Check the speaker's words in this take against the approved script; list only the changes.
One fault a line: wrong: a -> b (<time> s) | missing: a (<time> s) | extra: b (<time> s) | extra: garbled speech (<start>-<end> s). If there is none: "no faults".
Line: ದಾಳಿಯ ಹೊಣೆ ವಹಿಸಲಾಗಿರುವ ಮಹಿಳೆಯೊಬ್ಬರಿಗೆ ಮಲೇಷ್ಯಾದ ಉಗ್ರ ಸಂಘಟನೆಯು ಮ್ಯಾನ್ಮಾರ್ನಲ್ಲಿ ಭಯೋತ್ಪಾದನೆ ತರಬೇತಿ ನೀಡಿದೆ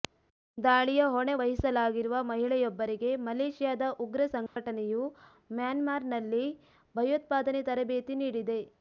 no faults